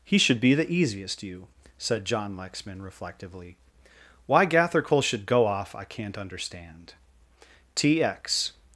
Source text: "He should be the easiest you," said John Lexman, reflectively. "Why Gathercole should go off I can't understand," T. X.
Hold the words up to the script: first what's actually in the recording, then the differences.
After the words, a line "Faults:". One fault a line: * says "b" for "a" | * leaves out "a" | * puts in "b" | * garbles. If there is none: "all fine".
"He should be the easiest you," said John Lexman, reflectively. "Why Gathercole should go off I can't understand," T. X.
Faults:
all fine